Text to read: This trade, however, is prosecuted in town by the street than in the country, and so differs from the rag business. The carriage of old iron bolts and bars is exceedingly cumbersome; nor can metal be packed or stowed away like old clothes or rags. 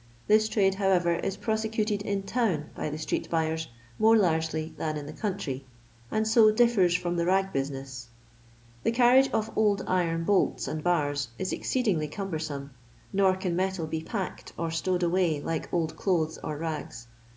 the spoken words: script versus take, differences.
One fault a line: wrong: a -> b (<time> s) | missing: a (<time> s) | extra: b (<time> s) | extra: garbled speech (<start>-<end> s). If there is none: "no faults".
extra: buyers more largely (3.3 s)